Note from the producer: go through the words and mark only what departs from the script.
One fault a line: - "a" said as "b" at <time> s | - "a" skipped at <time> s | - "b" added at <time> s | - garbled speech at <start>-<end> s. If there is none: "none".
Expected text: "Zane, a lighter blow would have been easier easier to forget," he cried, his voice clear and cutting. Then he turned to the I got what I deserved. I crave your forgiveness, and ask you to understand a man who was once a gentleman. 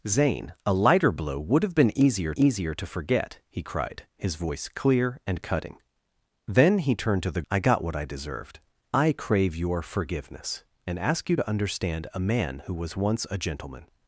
none